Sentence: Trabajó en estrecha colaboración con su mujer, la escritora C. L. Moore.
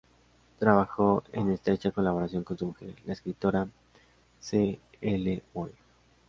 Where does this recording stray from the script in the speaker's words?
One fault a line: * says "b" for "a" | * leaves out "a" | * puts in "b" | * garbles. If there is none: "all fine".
all fine